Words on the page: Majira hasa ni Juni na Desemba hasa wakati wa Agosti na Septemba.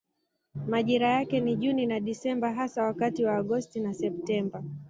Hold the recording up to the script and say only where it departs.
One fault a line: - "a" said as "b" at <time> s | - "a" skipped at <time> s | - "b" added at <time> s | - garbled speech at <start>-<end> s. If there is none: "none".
- "hasa" said as "yake" at 1.1 s